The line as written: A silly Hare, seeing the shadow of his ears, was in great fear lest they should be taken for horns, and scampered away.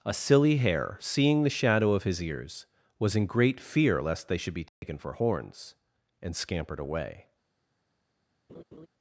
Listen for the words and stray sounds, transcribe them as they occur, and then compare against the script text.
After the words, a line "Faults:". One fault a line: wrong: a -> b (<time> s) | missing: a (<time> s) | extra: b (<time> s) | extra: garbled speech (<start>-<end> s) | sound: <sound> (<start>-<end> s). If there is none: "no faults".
A silly Hare, seeing the shadow of his ears, was in great fear lest they should be taken for horns, and scampered away.
Faults:
sound: dropout (4.7-4.8 s)
sound: laugh (8.5-8.9 s)